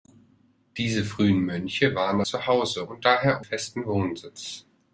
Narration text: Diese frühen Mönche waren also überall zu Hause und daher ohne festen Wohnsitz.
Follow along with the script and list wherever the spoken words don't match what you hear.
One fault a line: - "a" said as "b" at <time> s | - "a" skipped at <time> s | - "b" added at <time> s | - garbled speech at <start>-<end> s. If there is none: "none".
- "also überall" skipped at 2.2 s
- "ohne" skipped at 3.4 s